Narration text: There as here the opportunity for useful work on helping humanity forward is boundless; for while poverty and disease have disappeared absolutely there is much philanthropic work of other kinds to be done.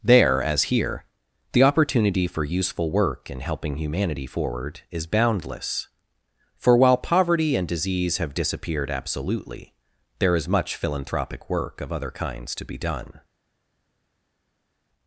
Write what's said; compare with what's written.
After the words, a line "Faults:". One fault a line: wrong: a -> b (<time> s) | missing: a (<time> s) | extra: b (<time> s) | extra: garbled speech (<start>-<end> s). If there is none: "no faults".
There as here the opportunity for useful work in helping humanity forward is boundless; for while poverty and disease have disappeared absolutely there is much philanthropic work of other kinds to be done.
Faults:
wrong: on -> in (3.3 s)